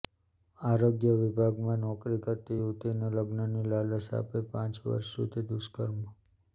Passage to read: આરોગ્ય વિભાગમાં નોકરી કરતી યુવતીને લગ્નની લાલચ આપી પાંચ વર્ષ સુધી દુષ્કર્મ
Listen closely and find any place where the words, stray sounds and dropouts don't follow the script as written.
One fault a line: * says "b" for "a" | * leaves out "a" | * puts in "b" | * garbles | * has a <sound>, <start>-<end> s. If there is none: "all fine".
all fine